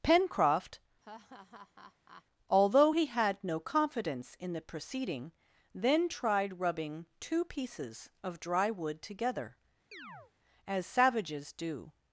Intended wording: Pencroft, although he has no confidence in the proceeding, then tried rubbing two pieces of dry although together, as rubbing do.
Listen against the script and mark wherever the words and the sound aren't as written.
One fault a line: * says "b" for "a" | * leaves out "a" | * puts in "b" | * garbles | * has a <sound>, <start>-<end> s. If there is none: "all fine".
* has a laugh, 1.0-2.2 s
* says "had" for "has"
* says "wood" for "although"
* has a chirp, 9.9-10.3 s
* says "savages" for "rubbing"